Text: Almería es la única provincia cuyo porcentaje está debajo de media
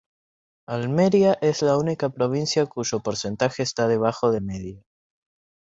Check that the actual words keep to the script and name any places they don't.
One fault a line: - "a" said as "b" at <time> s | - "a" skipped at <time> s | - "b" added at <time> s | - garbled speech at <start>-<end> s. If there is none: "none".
none